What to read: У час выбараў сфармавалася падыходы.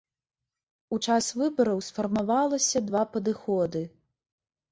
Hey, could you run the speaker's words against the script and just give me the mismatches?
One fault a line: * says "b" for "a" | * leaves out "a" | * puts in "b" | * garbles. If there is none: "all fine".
* puts in "два"